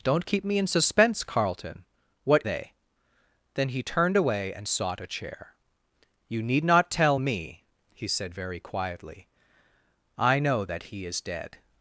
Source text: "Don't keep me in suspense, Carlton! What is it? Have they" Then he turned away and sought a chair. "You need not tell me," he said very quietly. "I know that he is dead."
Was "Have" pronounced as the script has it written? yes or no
no